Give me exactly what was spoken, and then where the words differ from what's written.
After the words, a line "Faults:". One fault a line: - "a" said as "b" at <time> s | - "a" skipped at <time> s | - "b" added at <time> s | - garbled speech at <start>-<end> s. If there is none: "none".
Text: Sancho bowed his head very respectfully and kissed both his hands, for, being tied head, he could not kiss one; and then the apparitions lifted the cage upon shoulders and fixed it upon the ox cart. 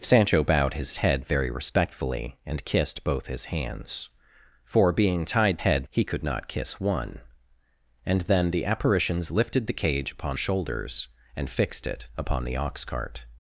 Sancho bowed his head very respectfully and kissed both his hands, for, being tied head, he could not kiss one; and then the apparitions lifted the cage upon shoulders and fixed it upon the ox cart.
Faults:
none